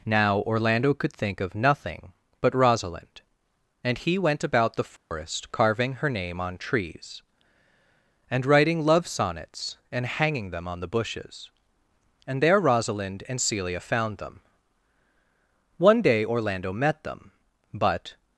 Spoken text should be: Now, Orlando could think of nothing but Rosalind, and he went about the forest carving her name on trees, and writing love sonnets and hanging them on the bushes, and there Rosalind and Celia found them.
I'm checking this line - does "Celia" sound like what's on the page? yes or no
yes